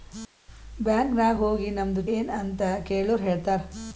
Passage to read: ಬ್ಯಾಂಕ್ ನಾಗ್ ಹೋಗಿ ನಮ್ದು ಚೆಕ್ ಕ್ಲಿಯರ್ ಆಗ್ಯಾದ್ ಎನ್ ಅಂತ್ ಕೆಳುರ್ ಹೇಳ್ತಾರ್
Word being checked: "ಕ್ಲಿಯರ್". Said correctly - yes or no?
no